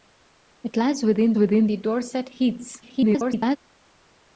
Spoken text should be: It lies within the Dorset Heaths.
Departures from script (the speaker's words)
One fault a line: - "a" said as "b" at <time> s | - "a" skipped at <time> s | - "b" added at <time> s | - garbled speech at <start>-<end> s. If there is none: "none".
- "within" added at 1.4 s
- garbled speech at 2.8-3.6 s